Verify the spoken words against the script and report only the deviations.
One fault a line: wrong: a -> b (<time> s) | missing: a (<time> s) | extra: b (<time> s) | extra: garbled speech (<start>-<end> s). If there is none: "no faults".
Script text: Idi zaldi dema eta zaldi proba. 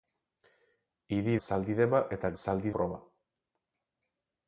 no faults